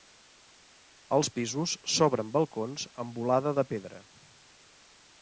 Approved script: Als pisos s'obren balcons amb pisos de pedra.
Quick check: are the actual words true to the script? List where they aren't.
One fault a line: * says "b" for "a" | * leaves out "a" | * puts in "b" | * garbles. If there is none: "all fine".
* says "volada" for "pisos"